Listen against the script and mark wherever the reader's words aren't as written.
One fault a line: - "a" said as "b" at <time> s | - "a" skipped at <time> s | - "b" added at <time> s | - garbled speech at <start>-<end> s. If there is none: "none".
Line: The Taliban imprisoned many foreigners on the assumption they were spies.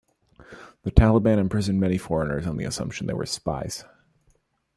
none